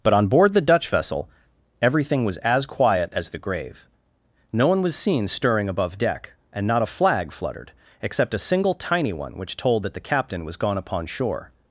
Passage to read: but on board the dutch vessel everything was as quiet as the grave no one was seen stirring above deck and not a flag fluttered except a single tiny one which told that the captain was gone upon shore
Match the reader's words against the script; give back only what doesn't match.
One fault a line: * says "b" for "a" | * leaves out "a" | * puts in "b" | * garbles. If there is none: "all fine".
all fine